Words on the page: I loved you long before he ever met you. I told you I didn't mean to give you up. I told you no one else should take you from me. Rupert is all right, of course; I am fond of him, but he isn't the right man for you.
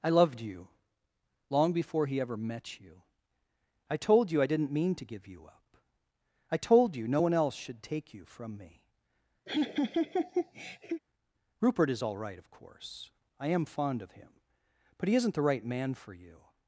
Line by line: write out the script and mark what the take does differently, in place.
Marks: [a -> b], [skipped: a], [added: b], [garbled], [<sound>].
I loved you long before he ever met you. I told you I didn't mean to give you up. I told you no one else should take you from me. [laugh] Rupert is all right, of course; I am fond of him, but he isn't the right man for you.